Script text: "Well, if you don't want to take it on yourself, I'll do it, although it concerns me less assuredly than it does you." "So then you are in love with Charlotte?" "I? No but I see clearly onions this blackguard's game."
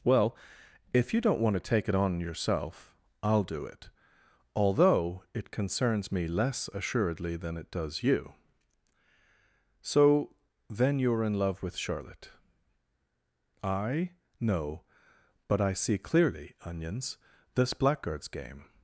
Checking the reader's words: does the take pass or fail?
pass